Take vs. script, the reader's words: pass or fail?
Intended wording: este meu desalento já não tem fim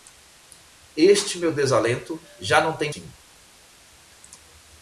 pass